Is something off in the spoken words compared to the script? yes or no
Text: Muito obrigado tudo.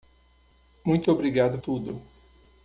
no